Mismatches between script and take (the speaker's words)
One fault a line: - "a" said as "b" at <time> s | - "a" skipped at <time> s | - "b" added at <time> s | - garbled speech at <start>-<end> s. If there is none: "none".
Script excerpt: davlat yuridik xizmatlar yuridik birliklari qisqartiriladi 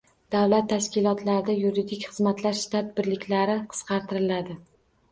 - "tashkilotlarida" added at 0.7 s
- "yuridik" said as "shtat" at 2.6 s